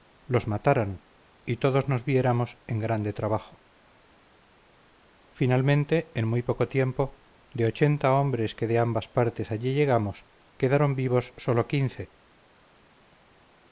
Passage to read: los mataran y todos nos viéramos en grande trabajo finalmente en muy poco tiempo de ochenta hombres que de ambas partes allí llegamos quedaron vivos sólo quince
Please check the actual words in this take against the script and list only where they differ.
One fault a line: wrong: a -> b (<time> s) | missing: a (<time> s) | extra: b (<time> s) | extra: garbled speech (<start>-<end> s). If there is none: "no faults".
no faults